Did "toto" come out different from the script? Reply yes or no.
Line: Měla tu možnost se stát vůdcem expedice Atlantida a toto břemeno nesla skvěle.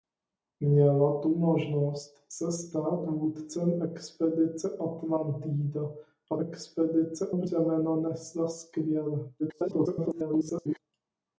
yes